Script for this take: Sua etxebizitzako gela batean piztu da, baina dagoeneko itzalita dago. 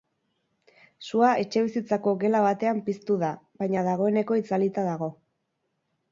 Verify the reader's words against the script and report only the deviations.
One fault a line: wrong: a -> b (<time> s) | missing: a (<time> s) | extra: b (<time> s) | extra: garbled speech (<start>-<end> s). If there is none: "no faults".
no faults